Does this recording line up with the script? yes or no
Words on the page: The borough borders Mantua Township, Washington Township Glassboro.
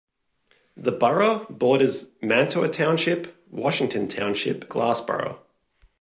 yes